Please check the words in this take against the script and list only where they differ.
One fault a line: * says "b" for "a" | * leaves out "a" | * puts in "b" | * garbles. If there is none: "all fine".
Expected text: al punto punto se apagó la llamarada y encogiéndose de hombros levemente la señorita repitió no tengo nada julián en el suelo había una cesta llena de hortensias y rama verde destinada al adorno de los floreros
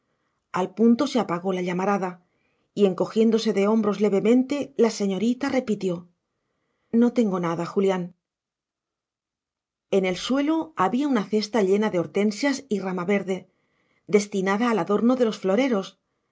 * leaves out "punto"